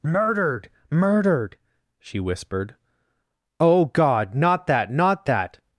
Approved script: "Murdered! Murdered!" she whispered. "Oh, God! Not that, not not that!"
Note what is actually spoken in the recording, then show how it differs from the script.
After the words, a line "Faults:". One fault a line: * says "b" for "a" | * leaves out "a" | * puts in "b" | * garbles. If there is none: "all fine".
"Murdered! Murdered!" she whispered. "Oh, God! Not that, not that!"
Faults:
* leaves out "not"